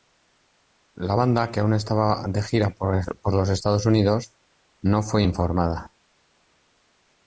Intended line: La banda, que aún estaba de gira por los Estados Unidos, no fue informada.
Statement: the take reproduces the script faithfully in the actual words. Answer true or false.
true